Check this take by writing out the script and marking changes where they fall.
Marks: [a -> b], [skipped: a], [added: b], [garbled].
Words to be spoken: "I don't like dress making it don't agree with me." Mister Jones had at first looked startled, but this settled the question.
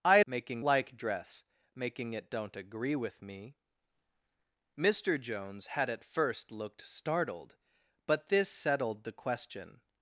"I [don't -> making] like dress making it don't agree with me." Mister Jones had at first looked startled, but this settled the question.